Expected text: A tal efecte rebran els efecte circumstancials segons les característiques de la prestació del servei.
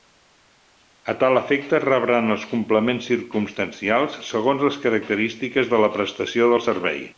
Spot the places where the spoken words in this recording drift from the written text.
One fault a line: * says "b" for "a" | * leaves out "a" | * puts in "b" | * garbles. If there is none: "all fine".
* says "complements" for "efecte"